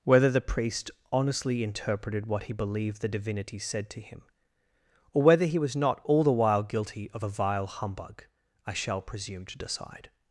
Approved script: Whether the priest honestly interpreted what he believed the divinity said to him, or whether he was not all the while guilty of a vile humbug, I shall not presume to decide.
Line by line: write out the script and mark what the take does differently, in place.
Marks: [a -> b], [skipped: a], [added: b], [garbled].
Whether the priest honestly interpreted what he believed the divinity said to him, or whether he was not all the while guilty of a vile humbug, I shall [skipped: not] presume to decide.